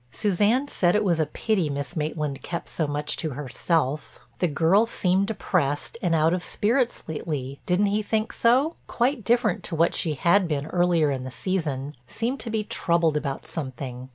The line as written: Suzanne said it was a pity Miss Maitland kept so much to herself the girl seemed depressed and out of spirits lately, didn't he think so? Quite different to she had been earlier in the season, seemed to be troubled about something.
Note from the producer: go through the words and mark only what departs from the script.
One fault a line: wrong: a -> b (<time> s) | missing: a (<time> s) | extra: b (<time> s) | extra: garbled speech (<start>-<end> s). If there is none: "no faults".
extra: what (9.8 s)